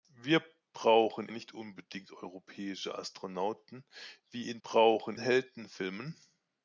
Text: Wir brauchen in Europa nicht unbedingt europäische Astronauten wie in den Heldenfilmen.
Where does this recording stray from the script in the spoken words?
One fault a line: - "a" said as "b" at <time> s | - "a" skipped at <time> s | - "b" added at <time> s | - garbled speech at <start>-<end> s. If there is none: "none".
- "in Europa" skipped at 1.3 s
- "den" said as "brauchen" at 4.6 s